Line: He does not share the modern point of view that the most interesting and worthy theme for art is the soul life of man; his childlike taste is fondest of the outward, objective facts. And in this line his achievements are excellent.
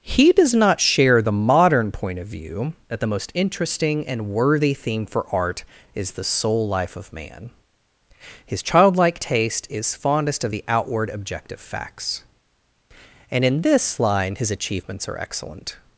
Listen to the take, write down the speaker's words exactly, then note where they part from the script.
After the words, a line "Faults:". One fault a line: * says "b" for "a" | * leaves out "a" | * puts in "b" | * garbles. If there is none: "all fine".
He does not share the modern point of view that the most interesting and worthy theme for art is the soul life of man; his childlike taste is fondest of the outward, objective facts. And in this line his achievements are excellent.
Faults:
all fine